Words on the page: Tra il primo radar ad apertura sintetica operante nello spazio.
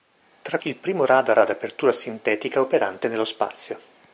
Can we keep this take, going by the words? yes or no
yes